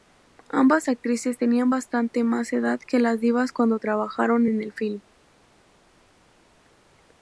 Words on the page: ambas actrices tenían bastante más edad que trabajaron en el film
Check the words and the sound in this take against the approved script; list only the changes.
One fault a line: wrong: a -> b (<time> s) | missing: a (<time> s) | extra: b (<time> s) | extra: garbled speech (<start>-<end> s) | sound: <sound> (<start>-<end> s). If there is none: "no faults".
extra: las divas cuando (3.0 s)